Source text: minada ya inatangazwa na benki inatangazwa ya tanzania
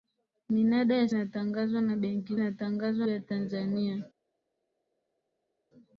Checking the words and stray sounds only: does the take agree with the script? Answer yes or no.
yes